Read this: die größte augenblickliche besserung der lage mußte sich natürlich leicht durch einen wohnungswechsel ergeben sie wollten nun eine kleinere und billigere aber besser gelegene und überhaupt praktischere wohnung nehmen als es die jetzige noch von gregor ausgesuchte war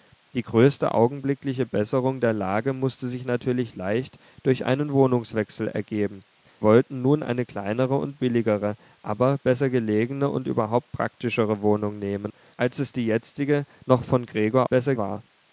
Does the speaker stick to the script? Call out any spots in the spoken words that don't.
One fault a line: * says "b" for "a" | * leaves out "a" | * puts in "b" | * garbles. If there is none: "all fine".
* leaves out "sie"
* says "besser" for "ausgesuchte"